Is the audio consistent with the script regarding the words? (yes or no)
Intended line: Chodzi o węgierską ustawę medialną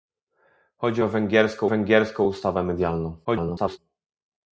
no